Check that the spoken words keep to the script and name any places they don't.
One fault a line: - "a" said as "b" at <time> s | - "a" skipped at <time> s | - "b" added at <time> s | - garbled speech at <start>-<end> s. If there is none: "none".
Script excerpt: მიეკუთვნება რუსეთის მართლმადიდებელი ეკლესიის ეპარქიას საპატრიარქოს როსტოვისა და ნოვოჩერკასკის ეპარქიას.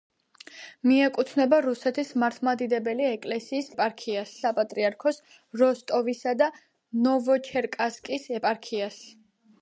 none